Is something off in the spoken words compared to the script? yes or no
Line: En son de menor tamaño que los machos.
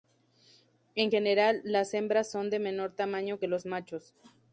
yes